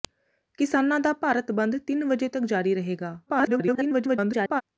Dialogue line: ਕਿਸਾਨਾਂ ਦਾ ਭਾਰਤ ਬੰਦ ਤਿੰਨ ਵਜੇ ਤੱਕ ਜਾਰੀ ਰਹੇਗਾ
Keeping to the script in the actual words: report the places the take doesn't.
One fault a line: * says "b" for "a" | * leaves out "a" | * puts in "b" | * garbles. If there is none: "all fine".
* garbles